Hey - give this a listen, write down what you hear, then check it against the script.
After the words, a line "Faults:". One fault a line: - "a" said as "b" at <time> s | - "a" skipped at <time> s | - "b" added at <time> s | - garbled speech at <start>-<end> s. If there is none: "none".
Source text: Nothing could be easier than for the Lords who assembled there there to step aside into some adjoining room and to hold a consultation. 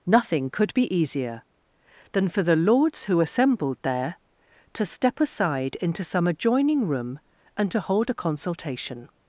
Nothing could be easier than for the Lords who assembled there to step aside into some adjoining room and to hold a consultation.
Faults:
- "there" skipped at 4.2 s